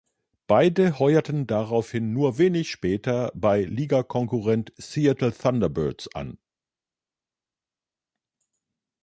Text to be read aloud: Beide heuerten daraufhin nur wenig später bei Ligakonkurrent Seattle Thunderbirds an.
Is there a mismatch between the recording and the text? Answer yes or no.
no